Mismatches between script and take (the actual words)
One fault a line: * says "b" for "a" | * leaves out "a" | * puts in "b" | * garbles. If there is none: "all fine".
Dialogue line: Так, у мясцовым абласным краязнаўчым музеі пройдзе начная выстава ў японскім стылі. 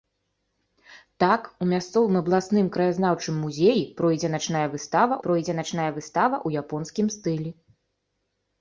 * puts in "пройдзе начная выстава"